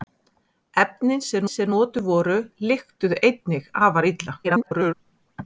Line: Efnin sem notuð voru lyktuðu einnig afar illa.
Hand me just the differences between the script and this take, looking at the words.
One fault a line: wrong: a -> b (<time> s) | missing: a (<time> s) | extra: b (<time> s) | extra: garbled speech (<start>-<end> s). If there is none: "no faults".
extra: sem (1.5 s)
extra: garbled speech (4.4-4.9 s)